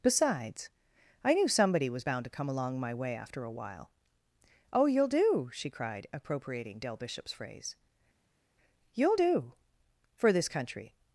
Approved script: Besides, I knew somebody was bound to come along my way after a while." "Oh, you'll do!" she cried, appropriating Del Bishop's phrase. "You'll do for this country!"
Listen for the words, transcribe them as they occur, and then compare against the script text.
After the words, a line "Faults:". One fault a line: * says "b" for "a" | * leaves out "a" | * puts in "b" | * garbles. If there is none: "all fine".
Besides, I knew somebody was bound to come along my way after a while." "Oh, you'll do!" she cried, appropriating Del Bishop's phrase. "You'll do for this country!"
Faults:
all fine